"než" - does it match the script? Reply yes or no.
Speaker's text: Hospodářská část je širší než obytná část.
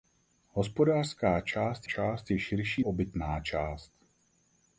no